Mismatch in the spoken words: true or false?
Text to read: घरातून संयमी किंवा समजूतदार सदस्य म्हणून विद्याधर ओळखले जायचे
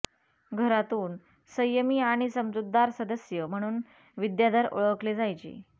true